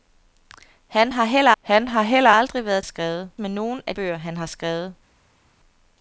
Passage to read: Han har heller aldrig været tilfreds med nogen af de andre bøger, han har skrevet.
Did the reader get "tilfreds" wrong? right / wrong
wrong